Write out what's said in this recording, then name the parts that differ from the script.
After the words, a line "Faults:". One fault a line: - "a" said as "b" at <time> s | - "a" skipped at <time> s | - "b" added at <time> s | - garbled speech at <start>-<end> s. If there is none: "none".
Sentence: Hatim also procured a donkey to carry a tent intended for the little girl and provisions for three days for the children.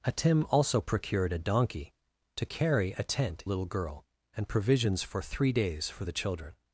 Hatim also procured a donkey to carry a tent little girl and provisions for three days for the children.
Faults:
- "intended for the" skipped at 3.4 s